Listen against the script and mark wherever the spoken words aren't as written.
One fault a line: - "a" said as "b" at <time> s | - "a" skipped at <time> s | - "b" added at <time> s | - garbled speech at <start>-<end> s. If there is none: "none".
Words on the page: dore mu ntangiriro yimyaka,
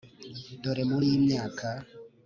- "ntangiriro" skipped at 1.0 s